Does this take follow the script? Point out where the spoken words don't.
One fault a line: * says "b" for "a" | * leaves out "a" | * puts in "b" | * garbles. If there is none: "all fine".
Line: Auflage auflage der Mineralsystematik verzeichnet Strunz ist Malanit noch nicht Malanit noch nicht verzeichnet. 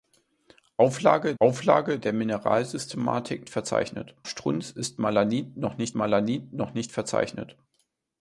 all fine